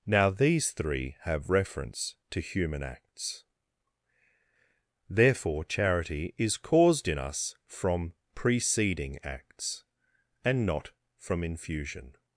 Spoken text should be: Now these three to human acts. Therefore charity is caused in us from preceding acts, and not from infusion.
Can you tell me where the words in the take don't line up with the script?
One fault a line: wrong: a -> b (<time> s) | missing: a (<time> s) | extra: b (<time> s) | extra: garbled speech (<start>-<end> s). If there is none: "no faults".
extra: have reference (1.2 s)